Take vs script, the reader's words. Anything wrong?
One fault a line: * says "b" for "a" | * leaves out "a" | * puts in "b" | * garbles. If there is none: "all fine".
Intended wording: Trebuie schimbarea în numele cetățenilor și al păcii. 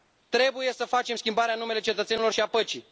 * puts in "să facem"